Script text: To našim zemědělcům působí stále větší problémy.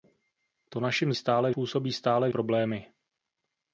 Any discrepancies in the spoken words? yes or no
yes